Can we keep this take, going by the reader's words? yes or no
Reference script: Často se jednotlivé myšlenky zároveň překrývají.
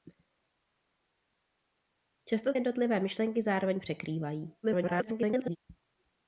no